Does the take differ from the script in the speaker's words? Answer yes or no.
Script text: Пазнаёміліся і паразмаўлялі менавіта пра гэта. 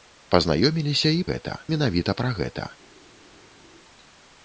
yes